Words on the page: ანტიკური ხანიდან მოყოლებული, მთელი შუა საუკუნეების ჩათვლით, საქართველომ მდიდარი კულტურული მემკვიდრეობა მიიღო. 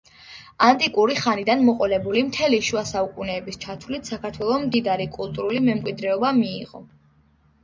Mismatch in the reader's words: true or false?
false